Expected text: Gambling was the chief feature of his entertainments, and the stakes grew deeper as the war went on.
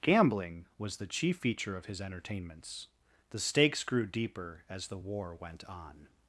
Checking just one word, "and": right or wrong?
wrong